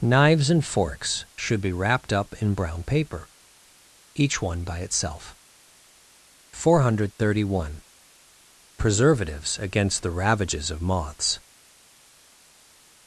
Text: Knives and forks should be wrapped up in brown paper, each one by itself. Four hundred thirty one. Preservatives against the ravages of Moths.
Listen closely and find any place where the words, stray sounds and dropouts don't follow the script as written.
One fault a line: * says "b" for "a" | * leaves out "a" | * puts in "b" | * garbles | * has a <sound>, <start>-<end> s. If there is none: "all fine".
all fine